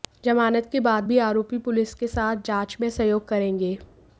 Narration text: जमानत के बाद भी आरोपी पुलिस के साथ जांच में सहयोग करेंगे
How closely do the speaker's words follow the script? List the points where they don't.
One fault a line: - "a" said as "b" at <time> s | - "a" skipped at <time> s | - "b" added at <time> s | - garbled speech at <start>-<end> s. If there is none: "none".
none